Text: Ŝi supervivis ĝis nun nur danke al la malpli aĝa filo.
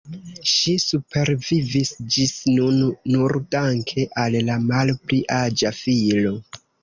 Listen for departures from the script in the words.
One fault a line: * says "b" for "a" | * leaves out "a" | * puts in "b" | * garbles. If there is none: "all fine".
all fine